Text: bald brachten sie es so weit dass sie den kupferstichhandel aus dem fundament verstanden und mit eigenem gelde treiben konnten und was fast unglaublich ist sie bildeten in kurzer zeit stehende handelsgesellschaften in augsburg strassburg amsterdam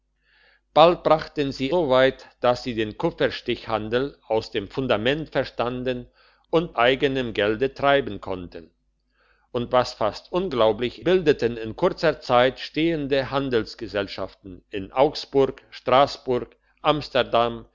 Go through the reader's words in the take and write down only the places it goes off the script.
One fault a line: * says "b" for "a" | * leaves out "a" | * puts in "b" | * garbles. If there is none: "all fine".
* leaves out "es"
* leaves out "mit"
* leaves out "ist sie"